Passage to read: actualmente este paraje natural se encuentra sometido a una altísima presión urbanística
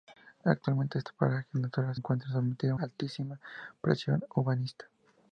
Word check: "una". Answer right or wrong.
wrong